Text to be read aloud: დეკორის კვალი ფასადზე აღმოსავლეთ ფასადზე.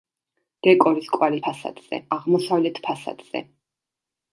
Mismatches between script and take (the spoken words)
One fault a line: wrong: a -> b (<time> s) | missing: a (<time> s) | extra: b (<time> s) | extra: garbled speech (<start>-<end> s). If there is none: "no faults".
no faults